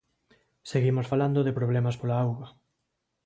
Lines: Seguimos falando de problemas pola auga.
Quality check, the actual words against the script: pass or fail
pass